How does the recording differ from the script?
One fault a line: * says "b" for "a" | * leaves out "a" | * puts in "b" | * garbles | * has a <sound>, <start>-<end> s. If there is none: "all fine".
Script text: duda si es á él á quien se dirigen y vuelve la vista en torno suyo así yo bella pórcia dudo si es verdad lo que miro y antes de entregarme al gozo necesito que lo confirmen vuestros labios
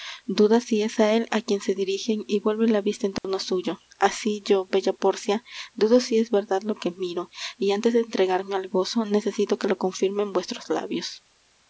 * has a dropout, 3.2-3.2 s